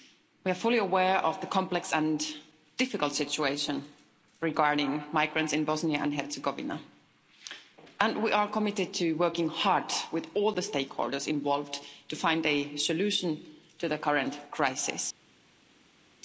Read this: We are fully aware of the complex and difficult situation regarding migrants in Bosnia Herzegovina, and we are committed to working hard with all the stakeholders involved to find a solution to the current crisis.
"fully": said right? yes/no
yes